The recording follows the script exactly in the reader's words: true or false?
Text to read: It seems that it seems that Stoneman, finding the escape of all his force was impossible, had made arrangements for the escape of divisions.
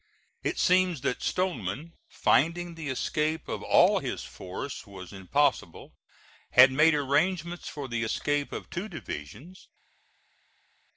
false